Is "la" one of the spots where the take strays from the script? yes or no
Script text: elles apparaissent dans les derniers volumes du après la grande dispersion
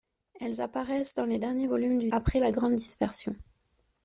no